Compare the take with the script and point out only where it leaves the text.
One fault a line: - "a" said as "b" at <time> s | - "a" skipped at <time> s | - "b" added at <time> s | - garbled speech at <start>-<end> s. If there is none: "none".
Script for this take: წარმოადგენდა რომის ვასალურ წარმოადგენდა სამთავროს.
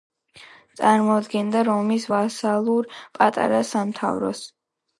- "წარმოადგენდა" said as "პატარა" at 3.2 s